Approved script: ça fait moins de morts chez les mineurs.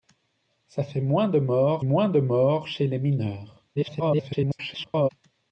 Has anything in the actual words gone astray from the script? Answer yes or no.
yes